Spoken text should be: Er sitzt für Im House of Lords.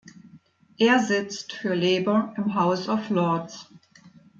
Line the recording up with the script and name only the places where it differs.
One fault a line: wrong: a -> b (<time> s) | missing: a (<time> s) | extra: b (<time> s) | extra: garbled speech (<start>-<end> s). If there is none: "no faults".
extra: Labour (1.8 s)